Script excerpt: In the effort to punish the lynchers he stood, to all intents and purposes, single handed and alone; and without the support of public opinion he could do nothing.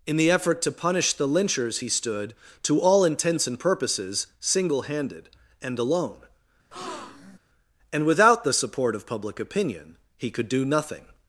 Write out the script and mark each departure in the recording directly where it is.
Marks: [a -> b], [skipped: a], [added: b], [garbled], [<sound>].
In the effort to punish the lynchers he stood, to all intents and purposes, single handed and alone; [breath] and without the support of public opinion he could do nothing.